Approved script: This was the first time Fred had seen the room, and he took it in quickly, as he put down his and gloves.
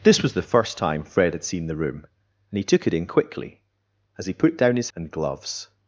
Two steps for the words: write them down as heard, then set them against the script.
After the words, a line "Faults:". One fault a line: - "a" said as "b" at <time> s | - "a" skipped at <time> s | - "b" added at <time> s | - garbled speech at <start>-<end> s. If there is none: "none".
This was the first time Fred had seen the room, and he took it in quickly, as he put down his and gloves.
Faults:
none